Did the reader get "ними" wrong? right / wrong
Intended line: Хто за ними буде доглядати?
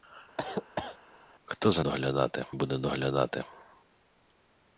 wrong